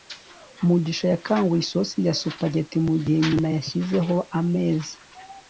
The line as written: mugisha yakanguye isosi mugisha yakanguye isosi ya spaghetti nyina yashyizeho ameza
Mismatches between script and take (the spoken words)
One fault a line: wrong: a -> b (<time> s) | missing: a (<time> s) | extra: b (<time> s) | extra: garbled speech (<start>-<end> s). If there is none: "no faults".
missing: mugisha yakanguye isosi (2.0 s)
extra: mugihe (2.9 s)